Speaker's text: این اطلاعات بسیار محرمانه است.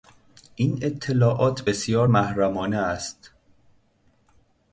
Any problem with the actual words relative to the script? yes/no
no